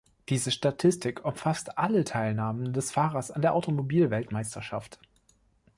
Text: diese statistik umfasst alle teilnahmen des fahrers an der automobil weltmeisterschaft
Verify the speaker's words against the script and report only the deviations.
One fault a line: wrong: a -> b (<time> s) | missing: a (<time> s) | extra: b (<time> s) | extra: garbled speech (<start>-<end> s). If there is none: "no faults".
no faults